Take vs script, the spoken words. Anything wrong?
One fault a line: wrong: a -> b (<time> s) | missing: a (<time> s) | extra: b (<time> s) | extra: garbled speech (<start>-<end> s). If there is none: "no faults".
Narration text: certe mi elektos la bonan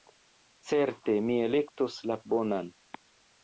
no faults